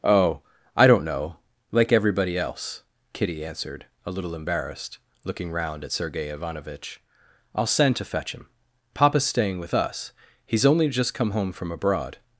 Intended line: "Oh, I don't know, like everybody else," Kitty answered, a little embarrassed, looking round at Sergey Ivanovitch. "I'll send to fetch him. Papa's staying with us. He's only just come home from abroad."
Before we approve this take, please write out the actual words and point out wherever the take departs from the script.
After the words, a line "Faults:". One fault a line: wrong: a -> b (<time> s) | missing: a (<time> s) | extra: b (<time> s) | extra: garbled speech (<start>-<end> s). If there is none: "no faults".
"Oh, I don't know, like everybody else," Kitty answered, a little embarrassed, looking round at Sergey Ivanovitch. "I'll send to fetch him. Papa's staying with us. He's only just come home from abroad."
Faults:
no faults